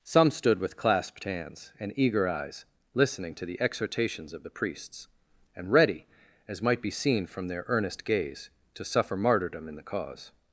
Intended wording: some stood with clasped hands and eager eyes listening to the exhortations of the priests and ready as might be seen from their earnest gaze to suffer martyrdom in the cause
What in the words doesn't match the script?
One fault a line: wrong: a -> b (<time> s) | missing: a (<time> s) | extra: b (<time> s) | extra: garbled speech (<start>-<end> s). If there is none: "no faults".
no faults